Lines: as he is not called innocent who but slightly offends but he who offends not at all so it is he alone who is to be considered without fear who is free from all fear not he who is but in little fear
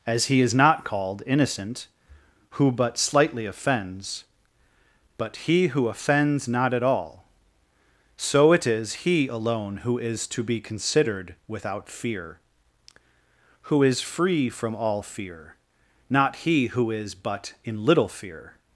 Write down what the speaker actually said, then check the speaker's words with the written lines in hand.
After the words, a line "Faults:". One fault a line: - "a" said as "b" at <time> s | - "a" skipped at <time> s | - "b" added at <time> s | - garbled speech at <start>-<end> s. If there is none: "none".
as he is not called innocent who but slightly offends but he who offends not at all so it is he alone who is to be considered without fear who is free from all fear not he who is but in little fear
Faults:
none